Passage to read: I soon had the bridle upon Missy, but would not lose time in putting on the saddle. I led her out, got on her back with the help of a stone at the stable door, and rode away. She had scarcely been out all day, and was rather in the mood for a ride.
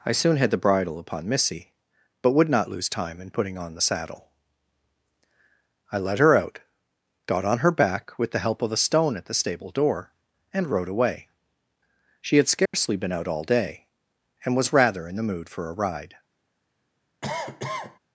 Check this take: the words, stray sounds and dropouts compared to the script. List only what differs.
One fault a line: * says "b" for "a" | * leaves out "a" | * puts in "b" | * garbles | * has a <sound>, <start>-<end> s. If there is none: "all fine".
* has a dropout, 12.7-12.7 s
* has a cough, 17.2-18.0 s